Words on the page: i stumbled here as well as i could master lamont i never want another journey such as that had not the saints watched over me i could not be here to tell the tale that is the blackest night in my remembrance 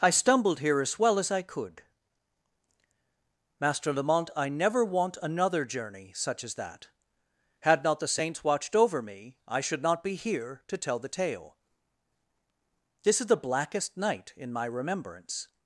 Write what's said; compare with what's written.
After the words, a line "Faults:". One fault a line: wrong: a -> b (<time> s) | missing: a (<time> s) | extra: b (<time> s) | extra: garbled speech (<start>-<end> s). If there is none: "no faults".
i stumbled here as well as i could master lamont i never want another journey such as that had not the saints watched over me i should not be here to tell the tale this is the blackest night in my remembrance
Faults:
wrong: could -> should (9.6 s)
wrong: that -> this (13.0 s)